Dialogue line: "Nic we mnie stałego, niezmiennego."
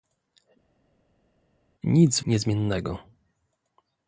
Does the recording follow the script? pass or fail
fail